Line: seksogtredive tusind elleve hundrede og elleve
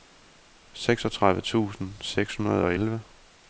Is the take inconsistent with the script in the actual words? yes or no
yes